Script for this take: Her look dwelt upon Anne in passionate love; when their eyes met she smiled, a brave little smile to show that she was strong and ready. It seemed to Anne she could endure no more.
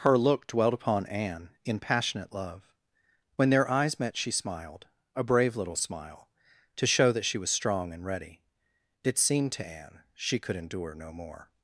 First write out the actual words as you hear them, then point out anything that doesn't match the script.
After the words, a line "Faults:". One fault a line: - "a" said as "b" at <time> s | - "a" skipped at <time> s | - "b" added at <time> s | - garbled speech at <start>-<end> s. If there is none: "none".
Her look dwelt upon Anne in passionate love; when their eyes met she smiled, a brave little smile to show that she was strong and ready. It seemed to Anne she could endure no more.
Faults:
none